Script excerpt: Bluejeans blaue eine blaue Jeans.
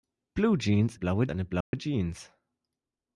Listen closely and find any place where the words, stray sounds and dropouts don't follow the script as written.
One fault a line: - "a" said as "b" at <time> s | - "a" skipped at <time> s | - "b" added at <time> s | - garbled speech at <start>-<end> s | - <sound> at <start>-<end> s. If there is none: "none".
- dropout at 1.6-1.7 s